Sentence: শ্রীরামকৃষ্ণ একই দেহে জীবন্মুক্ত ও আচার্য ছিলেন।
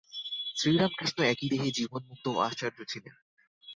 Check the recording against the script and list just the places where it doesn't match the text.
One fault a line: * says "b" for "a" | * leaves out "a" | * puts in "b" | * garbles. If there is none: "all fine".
all fine